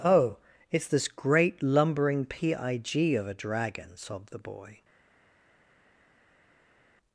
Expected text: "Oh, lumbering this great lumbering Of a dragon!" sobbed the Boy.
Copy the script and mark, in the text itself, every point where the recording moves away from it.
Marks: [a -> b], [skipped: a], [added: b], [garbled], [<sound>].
"Oh, [lumbering -> it's] this great lumbering [added: P I G] Of a dragon!" sobbed the Boy.